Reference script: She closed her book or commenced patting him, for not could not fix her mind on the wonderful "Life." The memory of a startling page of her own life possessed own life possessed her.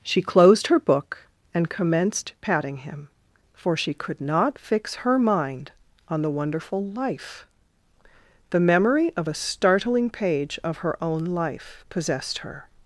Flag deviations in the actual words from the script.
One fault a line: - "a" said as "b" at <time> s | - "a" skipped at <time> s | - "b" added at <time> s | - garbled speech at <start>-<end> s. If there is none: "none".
- "or" said as "and" at 1.5 s
- "not" said as "she" at 3.8 s
- "own life possessed" skipped at 12.4 s